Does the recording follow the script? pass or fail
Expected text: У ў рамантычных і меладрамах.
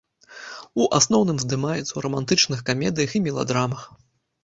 fail